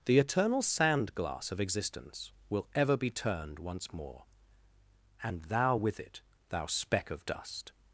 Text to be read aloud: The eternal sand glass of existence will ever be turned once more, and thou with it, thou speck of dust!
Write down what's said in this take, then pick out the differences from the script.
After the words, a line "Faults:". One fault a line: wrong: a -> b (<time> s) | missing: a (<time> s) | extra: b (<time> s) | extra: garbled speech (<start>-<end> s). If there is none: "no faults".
The eternal sand glass of existence will ever be turned once more, and thou with it, thou speck of dust!
Faults:
no faults